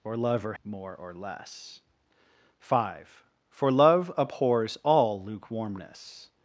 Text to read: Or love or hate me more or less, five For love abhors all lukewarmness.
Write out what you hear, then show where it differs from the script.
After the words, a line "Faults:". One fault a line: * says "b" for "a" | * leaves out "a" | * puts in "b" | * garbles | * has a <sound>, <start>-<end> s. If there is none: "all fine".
Or love or more or less, five For love abhors all lukewarmness.
Faults:
* leaves out "hate me"